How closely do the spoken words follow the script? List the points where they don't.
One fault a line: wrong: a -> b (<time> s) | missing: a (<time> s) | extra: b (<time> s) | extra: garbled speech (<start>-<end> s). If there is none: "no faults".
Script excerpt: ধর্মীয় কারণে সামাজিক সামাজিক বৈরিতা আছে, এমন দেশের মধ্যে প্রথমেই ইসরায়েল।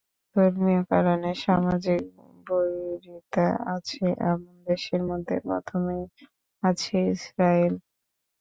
missing: সামাজিক (2.0 s)
extra: আছে (6.6 s)